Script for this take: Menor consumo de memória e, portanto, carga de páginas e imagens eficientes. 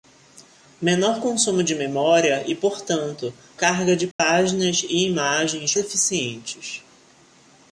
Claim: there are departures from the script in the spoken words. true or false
false